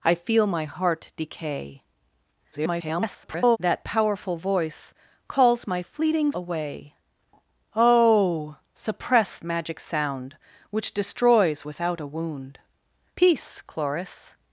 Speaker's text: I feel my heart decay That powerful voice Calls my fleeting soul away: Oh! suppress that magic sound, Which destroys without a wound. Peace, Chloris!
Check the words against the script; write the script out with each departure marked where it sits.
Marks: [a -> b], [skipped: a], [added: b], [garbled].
I feel my heart decay [garbled] That powerful voice Calls my fleeting [skipped: soul] away: Oh! suppress [skipped: that] magic sound, Which destroys without a wound. Peace, Chloris!